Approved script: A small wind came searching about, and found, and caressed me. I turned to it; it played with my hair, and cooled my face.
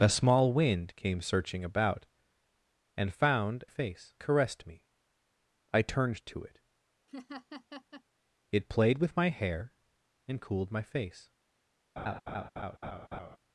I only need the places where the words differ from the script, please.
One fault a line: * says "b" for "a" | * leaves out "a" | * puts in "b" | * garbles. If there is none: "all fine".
* says "face" for "and"